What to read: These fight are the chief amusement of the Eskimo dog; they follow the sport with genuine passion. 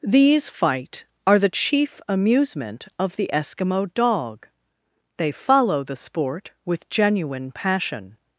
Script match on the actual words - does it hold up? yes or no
yes